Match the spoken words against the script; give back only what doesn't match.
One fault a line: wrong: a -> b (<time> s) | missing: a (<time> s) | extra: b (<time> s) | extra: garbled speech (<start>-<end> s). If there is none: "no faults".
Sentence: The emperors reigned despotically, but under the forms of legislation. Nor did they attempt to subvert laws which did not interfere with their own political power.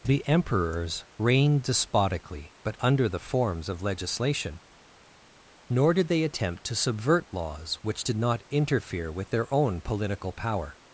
no faults